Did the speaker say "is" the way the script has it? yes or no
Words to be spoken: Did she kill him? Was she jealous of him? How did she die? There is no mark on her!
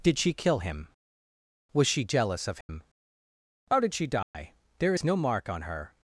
yes